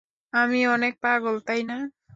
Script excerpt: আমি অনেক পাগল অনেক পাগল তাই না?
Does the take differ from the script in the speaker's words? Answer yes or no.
yes